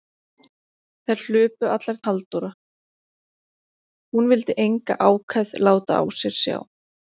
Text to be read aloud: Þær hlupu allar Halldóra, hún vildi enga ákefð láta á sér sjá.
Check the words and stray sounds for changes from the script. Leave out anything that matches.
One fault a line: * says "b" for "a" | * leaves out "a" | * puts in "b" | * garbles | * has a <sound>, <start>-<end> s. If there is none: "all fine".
all fine